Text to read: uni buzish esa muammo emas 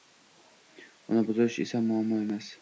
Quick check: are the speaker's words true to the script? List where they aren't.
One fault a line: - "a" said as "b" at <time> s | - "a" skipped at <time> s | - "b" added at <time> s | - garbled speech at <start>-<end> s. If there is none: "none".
none